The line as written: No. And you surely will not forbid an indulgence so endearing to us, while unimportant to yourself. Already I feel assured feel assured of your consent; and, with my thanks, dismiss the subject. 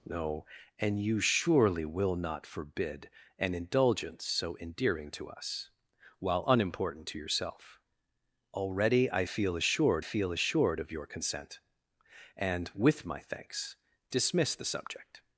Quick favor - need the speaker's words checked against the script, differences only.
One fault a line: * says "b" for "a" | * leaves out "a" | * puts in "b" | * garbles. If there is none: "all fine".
all fine